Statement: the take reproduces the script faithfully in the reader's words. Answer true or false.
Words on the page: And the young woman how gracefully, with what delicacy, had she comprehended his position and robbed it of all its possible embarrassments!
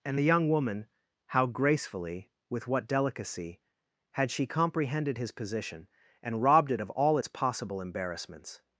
true